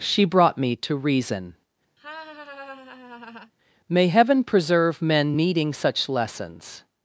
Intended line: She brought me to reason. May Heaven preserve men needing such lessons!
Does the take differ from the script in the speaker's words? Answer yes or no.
no